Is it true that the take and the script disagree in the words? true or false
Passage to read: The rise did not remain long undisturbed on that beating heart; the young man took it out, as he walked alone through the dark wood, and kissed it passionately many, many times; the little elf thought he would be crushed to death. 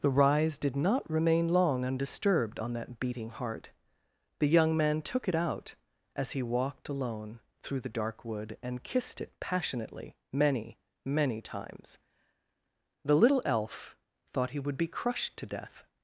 false